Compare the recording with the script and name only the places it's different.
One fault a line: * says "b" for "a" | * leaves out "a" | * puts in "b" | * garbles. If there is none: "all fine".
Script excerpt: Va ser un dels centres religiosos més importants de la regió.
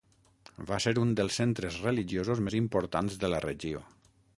all fine